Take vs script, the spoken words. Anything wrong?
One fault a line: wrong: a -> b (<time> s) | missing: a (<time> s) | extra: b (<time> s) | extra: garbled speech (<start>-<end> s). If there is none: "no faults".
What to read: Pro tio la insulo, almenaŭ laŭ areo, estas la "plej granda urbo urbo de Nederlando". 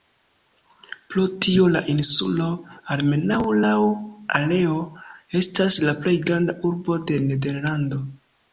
missing: urbo (7.0 s)